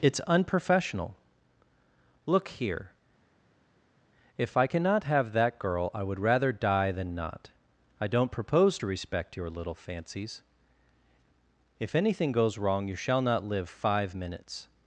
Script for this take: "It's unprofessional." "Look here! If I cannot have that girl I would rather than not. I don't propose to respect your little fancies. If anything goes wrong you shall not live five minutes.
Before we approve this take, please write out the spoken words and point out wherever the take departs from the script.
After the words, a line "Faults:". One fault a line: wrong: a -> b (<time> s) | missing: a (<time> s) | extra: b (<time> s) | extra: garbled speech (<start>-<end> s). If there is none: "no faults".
"It's unprofessional." "Look here! If I cannot have that girl I would rather die than not. I don't propose to respect your little fancies. If anything goes wrong you shall not live five minutes.
Faults:
extra: die (6.5 s)